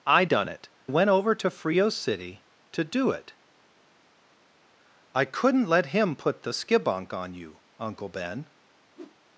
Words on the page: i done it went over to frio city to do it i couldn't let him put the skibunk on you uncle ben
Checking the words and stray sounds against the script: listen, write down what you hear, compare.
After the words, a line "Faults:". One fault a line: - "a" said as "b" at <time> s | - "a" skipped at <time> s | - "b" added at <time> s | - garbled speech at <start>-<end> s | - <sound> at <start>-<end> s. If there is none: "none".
i done it went over to frio city to do it i couldn't let him put the skibunk on you uncle ben
Faults:
- whoosh at 9.0-9.2 s